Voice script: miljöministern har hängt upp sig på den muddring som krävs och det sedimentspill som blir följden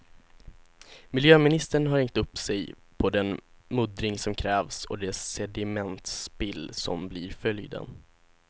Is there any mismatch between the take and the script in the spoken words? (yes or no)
no